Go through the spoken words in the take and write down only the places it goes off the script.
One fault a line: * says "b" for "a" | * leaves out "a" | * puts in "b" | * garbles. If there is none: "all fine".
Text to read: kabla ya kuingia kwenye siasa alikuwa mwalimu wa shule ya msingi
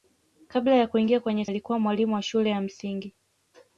* leaves out "siasa"